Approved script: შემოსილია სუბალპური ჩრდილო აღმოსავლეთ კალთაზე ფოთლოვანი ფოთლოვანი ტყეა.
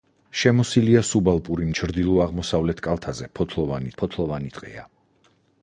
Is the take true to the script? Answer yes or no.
yes